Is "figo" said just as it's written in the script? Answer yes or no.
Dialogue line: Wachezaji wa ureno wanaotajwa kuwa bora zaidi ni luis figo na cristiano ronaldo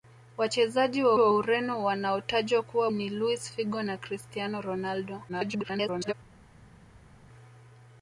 yes